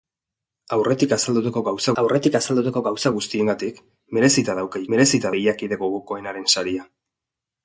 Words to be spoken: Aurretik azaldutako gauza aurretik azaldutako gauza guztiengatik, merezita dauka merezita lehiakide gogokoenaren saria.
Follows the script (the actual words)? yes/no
yes